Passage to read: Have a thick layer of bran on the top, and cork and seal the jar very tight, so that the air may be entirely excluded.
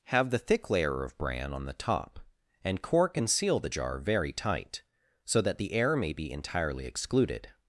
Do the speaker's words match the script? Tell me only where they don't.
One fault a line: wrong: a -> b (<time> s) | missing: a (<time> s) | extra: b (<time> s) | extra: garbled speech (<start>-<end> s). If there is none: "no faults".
wrong: a -> the (0.3 s)